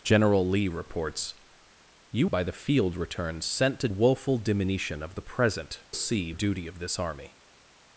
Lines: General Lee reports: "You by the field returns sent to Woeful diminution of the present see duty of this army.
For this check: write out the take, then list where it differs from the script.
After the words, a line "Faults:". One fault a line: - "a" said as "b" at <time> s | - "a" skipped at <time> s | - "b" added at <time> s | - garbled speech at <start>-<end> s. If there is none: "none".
General Lee reports: "You by the field returns sent to Woeful diminution of the present see duty of this army.
Faults:
none